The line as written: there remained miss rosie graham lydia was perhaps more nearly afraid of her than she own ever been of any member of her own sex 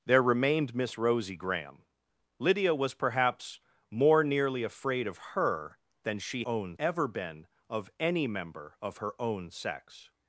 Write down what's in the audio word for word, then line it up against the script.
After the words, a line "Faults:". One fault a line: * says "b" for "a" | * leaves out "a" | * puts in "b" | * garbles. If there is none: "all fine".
there remained miss rosie graham lydia was perhaps more nearly afraid of her than she own ever been of any member of her own sex
Faults:
all fine